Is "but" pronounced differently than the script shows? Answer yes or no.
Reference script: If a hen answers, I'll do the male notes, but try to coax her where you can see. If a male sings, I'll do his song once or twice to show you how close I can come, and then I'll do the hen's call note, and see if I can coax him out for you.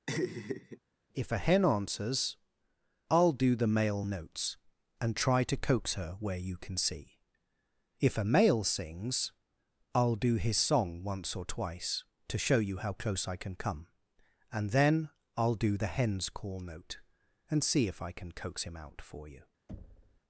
yes